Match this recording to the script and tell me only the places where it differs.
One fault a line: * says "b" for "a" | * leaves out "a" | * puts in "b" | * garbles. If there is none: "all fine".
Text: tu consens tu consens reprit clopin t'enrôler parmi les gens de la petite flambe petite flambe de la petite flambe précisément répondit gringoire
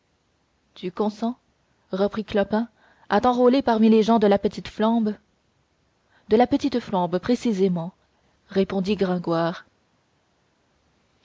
* leaves out "tu consens"
* puts in "à"
* leaves out "petite flambe"